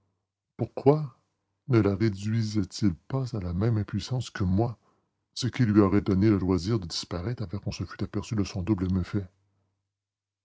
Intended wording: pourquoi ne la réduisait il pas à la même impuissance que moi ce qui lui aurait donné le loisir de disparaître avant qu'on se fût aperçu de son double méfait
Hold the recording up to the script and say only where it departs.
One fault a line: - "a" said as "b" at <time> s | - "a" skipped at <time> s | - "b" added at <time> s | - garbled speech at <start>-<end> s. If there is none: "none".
none